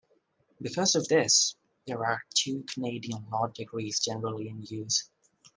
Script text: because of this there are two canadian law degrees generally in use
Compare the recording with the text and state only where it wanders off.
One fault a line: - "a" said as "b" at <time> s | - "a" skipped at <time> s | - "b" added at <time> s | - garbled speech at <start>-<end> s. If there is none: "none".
none